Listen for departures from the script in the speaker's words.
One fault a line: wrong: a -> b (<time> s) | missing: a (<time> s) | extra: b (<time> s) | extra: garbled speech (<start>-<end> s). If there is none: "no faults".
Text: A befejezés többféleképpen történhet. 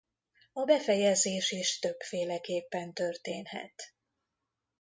extra: is (1.5 s)